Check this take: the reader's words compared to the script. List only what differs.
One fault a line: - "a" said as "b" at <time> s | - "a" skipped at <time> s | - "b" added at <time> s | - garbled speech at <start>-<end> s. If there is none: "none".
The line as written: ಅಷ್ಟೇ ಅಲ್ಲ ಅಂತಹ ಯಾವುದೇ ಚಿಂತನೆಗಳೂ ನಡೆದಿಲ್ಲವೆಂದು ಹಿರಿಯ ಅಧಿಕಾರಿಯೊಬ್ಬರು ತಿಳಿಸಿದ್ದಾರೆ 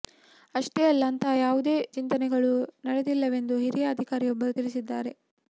none